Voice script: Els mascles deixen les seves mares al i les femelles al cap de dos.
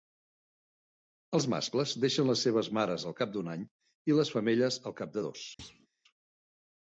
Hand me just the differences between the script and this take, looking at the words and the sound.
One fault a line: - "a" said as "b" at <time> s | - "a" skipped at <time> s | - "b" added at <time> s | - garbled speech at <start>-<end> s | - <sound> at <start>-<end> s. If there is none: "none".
- "cap d'un any" added at 3.2 s
- thud at 5.6-5.9 s